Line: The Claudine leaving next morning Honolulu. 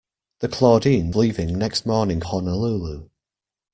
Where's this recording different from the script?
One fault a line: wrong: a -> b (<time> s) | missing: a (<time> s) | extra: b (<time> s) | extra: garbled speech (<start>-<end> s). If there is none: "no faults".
no faults